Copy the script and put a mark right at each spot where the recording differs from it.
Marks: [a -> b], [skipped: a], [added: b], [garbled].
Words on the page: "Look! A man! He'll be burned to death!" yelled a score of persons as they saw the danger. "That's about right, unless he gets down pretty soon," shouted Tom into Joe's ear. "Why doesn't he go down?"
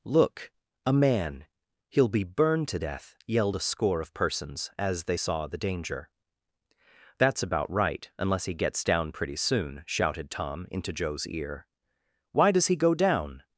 "Look! A man! He'll be burned to death!" yelled a score of persons as they saw the danger. "That's about right, unless he gets down pretty soon," shouted Tom into Joe's ear. "Why [doesn't -> does] he go down?"